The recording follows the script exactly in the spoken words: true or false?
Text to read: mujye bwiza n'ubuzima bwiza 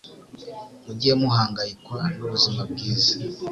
false